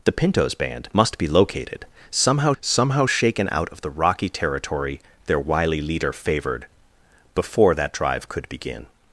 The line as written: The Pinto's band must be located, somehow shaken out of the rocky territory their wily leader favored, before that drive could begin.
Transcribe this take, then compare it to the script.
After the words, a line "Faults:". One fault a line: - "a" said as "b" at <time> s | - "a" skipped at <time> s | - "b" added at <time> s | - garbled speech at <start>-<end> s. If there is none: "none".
The Pinto's band must be located, somehow somehow shaken out of the rocky territory their wily leader favored, before that drive could begin.
Faults:
- "somehow" added at 2.6 s